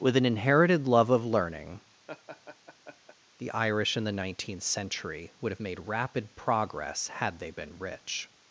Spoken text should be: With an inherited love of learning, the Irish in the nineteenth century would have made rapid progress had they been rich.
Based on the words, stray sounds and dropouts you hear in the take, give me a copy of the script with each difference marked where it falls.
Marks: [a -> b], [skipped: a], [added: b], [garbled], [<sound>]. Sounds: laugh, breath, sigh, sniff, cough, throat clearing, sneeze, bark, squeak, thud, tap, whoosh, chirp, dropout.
With an inherited love of learning, [laugh] the Irish in the nineteenth century would have made rapid progress had they been rich.